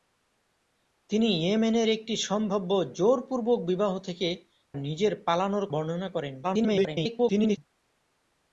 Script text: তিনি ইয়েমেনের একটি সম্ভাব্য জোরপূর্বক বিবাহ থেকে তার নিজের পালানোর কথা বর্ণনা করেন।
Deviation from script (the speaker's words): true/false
true